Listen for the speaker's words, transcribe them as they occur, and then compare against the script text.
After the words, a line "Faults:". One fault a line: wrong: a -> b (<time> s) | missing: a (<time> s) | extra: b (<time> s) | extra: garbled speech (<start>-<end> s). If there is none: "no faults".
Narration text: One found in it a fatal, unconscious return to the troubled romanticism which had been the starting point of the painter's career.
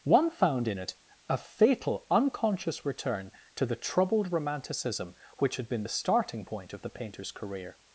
One found in it a fatal, unconscious return to the troubled romanticism which had been the starting point of the painter's career.
Faults:
no faults